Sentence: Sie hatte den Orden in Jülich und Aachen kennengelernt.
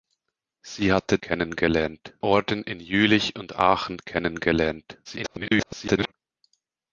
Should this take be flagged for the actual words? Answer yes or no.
yes